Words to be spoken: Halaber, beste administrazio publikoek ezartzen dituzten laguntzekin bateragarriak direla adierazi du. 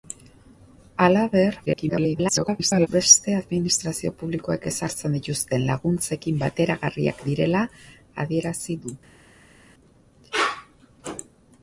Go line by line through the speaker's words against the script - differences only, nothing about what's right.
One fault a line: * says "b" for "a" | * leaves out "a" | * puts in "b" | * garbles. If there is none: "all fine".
* garbles